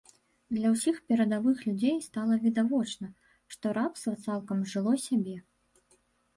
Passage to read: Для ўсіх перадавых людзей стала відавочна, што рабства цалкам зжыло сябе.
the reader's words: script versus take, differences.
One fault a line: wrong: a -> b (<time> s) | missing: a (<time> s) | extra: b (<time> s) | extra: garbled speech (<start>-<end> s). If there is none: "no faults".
no faults